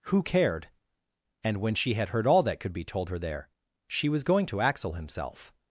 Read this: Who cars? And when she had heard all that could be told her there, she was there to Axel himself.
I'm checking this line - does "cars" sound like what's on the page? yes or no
no